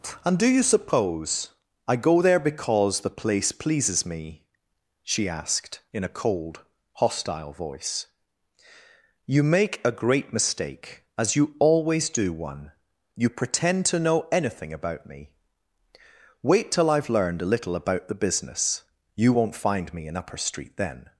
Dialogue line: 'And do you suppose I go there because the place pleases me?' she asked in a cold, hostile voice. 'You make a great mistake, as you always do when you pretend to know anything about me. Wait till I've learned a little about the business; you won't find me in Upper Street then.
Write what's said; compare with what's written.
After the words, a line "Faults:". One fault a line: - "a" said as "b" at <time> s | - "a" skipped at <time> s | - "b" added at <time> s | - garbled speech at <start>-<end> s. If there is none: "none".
'And do you suppose I go there because the place pleases me?' she asked in a cold, hostile voice. 'You make a great mistake, as you always do one you pretend to know anything about me. Wait till I've learned a little about the business; you won't find me in Upper Street then.
Faults:
- "when" said as "one" at 12.3 s